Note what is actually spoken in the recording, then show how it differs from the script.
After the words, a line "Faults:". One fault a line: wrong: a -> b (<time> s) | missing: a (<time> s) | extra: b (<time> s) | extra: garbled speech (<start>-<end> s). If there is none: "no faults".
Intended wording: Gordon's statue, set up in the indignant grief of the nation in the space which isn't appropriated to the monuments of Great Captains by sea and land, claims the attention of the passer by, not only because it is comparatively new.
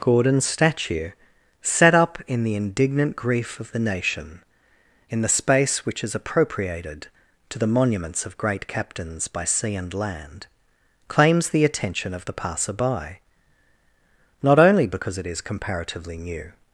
Gordon's statue, set up in the indignant grief of the nation in the space which is appropriated to the monuments of Great Captains by sea and land, claims the attention of the passer by, not only because it is comparatively new.
Faults:
wrong: isn't -> is (6.0 s)